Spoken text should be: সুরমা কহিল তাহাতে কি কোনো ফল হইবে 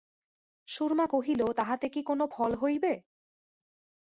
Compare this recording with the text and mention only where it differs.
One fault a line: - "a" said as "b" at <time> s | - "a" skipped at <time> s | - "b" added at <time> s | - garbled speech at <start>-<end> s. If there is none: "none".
none